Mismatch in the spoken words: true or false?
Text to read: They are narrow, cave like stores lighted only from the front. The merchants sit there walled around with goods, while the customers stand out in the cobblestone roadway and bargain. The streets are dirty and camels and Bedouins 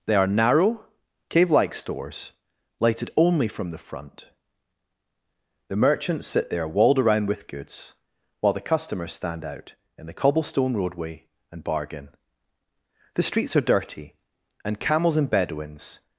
false